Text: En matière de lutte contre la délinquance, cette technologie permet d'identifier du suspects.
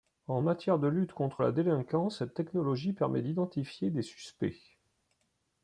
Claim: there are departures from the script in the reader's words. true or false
true